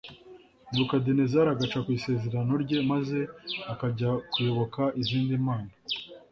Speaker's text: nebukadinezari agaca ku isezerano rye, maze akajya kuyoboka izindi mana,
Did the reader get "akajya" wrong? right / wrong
right